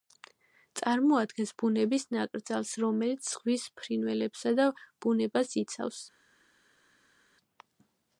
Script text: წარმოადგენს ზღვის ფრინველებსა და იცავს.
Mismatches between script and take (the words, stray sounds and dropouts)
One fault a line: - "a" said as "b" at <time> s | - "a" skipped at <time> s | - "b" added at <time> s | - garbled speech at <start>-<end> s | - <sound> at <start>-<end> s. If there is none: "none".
- "ბუნების ნაკრძალს რომელიც" added at 1.6 s
- "ბუნებას" added at 5.1 s